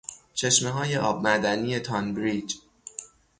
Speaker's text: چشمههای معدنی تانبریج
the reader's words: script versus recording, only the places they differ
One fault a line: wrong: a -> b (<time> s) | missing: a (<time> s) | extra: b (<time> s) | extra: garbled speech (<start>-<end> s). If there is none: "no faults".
extra: آب (1.0 s)